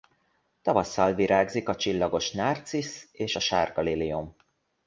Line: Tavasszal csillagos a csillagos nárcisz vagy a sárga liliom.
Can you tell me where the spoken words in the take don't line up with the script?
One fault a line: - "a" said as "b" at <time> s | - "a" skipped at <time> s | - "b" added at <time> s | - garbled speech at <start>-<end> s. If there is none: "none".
- "csillagos" said as "virágzik" at 1.1 s
- "vagy" said as "és" at 3.1 s